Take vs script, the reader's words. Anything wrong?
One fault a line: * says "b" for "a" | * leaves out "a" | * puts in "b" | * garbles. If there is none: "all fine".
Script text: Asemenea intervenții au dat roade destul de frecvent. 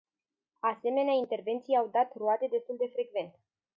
all fine